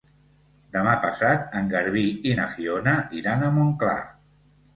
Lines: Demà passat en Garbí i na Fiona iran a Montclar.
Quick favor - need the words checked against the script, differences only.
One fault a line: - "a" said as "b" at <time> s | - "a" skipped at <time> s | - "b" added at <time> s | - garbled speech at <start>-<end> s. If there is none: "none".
none